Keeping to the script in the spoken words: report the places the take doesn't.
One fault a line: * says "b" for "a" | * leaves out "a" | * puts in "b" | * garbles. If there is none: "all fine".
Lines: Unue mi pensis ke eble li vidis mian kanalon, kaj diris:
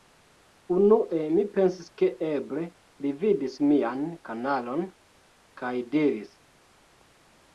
all fine